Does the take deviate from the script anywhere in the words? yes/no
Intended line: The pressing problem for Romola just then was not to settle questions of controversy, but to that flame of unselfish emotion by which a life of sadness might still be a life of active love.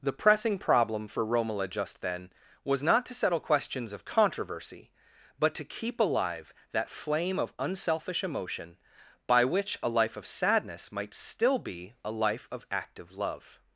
yes